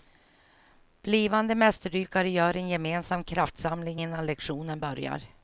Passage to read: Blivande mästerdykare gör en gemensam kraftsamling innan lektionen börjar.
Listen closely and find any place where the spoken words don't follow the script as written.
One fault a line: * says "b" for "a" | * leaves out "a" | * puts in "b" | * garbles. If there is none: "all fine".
all fine